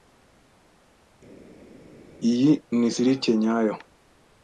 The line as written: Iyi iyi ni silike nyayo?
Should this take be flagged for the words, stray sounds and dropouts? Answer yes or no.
yes